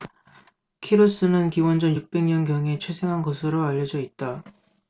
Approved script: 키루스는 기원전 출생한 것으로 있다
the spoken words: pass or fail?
fail